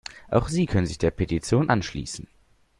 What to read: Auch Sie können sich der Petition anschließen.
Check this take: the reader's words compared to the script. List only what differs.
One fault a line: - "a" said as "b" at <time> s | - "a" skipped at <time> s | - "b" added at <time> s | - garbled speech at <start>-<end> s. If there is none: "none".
none